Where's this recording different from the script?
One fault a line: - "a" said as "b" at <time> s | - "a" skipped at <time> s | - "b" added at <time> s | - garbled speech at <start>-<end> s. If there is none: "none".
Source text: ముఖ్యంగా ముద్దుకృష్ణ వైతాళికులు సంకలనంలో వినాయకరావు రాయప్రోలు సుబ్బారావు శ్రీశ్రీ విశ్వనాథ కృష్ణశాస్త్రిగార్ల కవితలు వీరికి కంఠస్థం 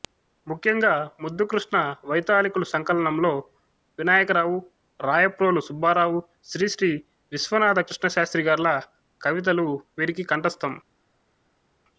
none